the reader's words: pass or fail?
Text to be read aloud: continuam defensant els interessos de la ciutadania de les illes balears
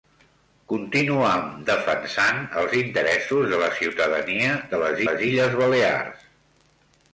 fail